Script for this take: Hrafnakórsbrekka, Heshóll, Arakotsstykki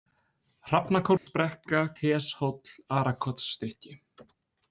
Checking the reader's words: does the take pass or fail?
pass